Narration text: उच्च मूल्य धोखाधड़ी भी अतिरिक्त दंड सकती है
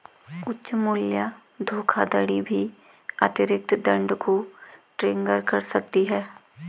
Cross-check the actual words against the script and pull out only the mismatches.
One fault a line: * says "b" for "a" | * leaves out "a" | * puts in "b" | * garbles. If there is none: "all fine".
* puts in "को ट्रिगर कर"